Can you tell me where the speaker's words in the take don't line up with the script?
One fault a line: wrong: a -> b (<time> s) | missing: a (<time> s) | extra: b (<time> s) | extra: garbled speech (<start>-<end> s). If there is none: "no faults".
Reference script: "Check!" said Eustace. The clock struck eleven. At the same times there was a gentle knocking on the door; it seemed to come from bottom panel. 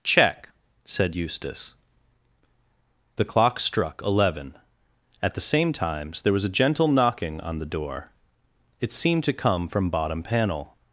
no faults